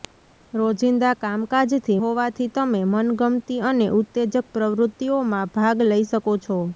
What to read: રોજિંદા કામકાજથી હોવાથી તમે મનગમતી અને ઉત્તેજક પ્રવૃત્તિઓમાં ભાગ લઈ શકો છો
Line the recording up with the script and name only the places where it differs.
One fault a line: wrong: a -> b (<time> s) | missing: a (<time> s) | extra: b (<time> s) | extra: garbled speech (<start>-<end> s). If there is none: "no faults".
no faults